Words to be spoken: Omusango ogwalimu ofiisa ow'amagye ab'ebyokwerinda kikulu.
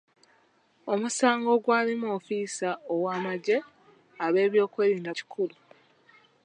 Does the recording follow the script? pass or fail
pass